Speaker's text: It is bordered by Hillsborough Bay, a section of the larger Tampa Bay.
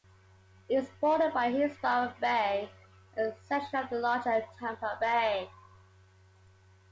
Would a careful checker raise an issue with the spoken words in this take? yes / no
no